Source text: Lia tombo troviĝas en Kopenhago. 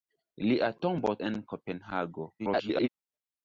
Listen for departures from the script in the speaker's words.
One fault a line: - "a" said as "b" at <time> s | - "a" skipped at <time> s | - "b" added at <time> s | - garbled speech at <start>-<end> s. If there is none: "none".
- "troviĝas" skipped at 1.1 s
- garbled speech at 2.4-2.9 s